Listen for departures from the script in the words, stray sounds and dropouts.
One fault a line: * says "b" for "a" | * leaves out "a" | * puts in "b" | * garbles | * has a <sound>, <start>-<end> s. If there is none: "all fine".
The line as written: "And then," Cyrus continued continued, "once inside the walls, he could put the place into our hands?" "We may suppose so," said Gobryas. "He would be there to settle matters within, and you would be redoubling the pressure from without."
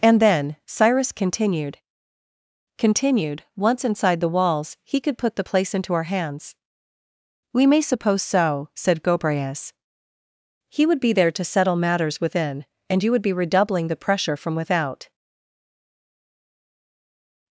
all fine